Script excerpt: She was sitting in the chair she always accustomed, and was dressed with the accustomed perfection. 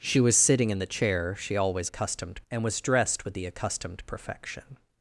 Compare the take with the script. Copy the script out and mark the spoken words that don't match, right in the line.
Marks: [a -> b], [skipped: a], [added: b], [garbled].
She was sitting in the chair she always accustomed, and was dressed with the accustomed perfection.